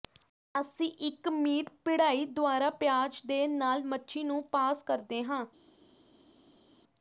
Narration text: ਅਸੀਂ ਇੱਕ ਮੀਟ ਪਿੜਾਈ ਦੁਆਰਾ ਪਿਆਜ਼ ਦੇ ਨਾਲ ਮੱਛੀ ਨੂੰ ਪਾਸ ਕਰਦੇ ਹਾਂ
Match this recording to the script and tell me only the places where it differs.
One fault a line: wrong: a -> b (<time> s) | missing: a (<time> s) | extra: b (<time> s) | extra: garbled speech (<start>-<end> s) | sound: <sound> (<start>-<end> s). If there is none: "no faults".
no faults